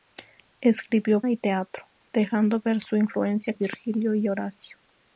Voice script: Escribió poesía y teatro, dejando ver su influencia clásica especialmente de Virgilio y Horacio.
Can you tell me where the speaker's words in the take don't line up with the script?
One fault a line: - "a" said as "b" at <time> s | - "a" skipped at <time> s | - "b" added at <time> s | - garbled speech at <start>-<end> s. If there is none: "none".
- "poesía" skipped at 1.2 s
- "clásica especialmente de" skipped at 3.5 s